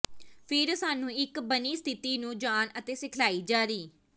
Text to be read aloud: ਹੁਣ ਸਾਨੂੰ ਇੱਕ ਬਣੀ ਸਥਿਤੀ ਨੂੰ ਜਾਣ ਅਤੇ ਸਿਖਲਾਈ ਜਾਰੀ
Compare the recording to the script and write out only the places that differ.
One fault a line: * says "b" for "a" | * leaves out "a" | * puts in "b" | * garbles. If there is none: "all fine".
* says "ਫਿਰ" for "ਹੁਣ"